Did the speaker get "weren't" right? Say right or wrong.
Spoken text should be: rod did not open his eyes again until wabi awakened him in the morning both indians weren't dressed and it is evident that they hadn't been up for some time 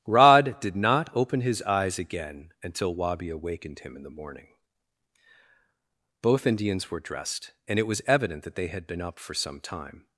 wrong